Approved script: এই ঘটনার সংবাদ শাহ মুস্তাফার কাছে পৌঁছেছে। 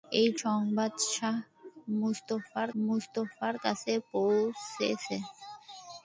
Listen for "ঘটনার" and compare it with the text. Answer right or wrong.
wrong